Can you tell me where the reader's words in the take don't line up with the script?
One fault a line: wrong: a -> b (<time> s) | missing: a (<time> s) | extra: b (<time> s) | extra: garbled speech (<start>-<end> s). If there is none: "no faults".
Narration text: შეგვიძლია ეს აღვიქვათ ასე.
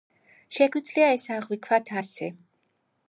no faults